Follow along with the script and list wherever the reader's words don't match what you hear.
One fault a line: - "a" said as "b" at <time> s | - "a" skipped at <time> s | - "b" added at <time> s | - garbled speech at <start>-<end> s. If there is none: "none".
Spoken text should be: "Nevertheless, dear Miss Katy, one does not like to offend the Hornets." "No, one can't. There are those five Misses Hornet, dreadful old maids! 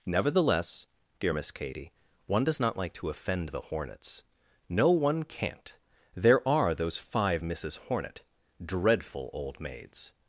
none